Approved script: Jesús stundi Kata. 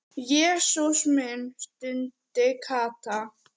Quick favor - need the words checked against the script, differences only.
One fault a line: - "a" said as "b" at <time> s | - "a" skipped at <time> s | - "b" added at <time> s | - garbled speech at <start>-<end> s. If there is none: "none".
- "minn" added at 1.1 s